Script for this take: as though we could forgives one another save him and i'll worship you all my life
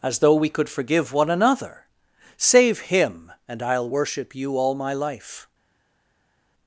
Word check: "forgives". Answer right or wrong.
wrong